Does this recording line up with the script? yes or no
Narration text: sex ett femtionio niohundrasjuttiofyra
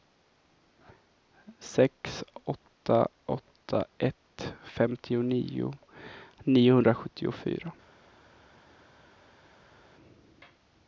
no